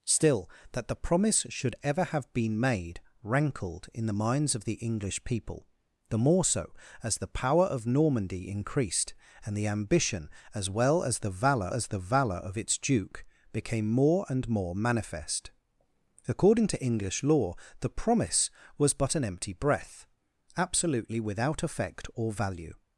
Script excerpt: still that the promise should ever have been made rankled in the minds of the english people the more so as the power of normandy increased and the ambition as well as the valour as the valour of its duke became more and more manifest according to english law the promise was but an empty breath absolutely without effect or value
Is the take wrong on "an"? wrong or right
right